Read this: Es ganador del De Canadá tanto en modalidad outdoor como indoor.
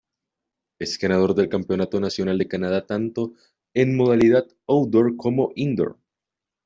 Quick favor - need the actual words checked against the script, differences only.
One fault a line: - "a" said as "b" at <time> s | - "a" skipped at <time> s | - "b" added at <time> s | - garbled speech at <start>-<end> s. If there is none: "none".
- "Campeonato Nacional" added at 1.5 s